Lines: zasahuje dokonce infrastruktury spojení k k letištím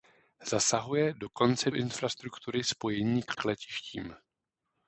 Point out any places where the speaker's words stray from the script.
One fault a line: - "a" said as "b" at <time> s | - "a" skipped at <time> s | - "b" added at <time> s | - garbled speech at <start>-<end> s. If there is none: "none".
none